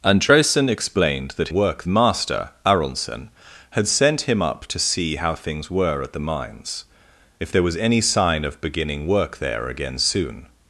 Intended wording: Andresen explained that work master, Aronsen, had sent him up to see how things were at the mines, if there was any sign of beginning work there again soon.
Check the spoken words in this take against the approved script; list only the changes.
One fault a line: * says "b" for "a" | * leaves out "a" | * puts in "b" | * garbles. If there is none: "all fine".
all fine